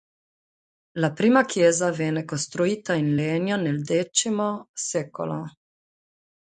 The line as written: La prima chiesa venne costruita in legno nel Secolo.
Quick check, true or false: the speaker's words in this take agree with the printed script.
false